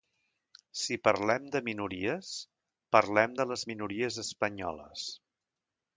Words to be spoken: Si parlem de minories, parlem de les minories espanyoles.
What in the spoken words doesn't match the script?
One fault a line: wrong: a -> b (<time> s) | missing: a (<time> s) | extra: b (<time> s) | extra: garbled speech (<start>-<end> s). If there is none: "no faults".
no faults